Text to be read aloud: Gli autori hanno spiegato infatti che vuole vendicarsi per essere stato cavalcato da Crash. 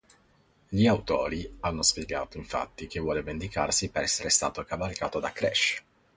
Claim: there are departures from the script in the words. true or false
false